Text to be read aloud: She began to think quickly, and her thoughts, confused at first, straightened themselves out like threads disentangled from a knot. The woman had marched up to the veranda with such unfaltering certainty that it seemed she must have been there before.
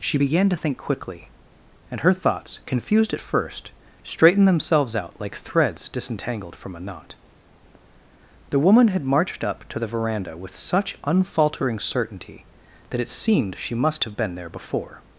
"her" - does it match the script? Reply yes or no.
yes